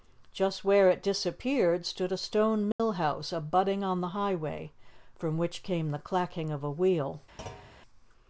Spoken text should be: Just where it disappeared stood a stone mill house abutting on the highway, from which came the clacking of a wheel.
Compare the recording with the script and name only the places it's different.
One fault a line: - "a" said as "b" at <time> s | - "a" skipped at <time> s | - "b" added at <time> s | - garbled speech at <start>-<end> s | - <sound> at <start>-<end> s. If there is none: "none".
- dropout at 2.7-2.8 s
- thud at 7.4-7.8 s